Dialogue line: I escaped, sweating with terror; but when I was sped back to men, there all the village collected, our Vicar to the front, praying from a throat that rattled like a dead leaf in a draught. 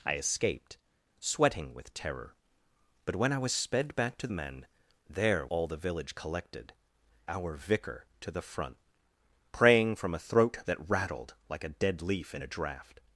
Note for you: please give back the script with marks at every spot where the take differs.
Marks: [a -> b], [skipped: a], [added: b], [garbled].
I escaped, sweating with terror; but when I was sped back to men, there all the village collected, our Vicar to the front, praying from a throat that rattled like a dead leaf in a draught.